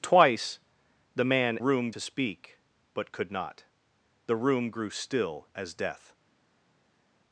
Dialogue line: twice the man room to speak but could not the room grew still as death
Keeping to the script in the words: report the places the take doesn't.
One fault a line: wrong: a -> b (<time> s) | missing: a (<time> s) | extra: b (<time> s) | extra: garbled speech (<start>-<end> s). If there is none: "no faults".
no faults